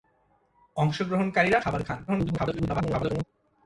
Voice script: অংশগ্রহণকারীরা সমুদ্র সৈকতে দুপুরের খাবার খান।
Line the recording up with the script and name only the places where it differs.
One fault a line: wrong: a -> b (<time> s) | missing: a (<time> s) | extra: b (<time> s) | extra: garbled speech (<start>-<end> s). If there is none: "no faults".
missing: সমুদ্র সৈকতে দুপুরের (1.6 s)
extra: garbled speech (2.1-3.2 s)